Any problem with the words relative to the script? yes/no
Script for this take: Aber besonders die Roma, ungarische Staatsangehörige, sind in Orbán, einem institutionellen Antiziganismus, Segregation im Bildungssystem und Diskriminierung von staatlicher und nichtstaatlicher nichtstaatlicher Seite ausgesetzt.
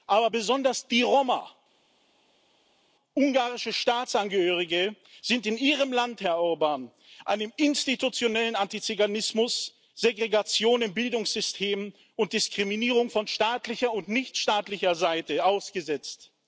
yes